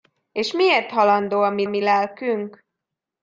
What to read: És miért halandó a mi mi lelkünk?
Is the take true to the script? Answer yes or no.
yes